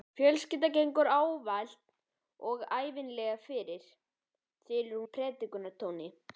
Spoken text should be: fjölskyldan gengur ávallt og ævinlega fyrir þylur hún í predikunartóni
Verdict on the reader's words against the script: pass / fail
fail